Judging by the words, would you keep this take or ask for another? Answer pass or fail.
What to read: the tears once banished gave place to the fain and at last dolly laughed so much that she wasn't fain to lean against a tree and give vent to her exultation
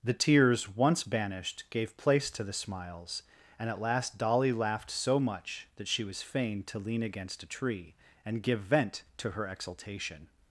fail